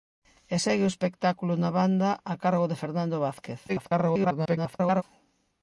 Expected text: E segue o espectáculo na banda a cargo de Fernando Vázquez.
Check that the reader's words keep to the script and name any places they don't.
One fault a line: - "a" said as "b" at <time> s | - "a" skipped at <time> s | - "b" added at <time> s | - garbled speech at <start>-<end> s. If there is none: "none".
- garbled speech at 3.7-5.0 s